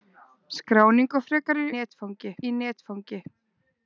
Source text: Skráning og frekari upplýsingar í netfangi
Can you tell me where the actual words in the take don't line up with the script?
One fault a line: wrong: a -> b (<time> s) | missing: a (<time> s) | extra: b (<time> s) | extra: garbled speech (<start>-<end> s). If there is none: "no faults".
wrong: upplýsingar -> netfangi (1.7 s)